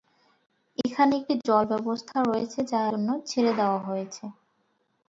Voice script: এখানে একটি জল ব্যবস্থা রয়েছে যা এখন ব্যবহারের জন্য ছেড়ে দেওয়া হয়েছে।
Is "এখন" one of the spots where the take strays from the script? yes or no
yes